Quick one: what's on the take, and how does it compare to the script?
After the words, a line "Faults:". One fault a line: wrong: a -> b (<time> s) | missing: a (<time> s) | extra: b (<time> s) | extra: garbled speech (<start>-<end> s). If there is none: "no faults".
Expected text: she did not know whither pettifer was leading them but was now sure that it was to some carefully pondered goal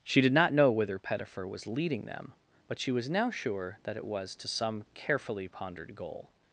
she did not know whither pettifer was leading them but she was now sure that it was to some carefully pondered goal
Faults:
extra: she (2.8 s)